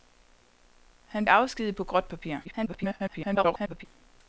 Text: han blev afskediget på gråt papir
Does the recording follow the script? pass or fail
fail